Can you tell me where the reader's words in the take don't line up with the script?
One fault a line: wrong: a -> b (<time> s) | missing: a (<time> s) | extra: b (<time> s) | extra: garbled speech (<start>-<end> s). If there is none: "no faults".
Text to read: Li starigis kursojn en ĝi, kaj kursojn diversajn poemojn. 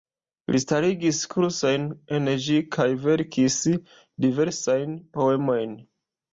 wrong: kursojn -> verkis (3.1 s)